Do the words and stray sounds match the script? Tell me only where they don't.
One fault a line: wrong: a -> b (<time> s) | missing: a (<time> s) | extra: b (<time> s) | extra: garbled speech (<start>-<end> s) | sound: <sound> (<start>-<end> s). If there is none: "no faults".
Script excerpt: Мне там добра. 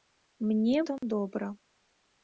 sound: dropout (1.0-1.0 s)